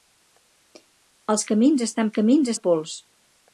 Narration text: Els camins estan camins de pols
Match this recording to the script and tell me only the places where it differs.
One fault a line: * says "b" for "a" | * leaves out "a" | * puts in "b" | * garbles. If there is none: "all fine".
all fine